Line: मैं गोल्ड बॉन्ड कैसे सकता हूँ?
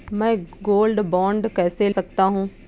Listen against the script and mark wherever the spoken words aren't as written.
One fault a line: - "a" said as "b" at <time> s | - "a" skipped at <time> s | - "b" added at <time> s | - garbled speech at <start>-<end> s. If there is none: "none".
none